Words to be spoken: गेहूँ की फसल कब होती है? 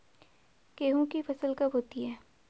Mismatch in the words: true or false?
false